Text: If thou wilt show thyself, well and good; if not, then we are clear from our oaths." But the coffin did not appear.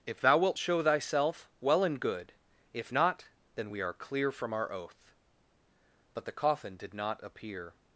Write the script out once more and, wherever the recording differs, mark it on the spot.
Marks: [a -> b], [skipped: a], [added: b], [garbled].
If thou wilt show thyself, well and good; if not, then we are clear from our [oaths." -> oath] But the coffin did not appear.